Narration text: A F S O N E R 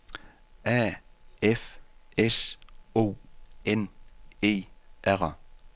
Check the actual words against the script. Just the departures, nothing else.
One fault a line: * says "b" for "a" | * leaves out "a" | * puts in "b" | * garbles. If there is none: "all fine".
all fine